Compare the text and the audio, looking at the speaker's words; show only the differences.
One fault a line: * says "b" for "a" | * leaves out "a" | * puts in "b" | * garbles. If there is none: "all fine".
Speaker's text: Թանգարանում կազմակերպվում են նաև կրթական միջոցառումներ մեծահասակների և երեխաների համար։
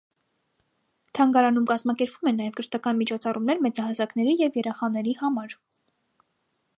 all fine